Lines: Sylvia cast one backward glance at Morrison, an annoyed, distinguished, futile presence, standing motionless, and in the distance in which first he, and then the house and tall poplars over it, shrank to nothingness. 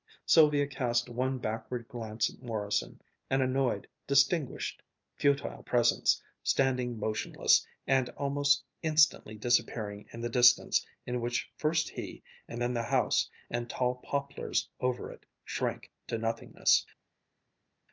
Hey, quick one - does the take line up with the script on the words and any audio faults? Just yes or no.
no